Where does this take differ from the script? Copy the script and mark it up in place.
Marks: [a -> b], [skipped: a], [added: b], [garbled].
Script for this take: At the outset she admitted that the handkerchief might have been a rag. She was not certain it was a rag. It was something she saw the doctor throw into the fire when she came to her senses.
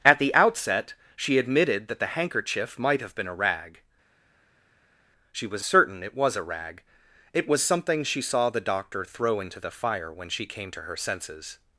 At the outset she admitted that the handkerchief might have been a rag. She was [skipped: not] certain it was a rag. It was something she saw the doctor throw into the fire when she came to her senses.